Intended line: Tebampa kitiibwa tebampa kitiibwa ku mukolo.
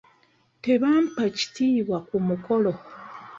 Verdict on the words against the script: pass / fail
fail